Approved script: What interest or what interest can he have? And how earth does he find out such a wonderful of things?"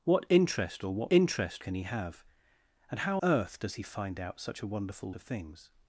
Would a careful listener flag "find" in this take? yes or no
no